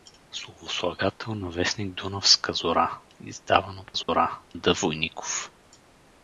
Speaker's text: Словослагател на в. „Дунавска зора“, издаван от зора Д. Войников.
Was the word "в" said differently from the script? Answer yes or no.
no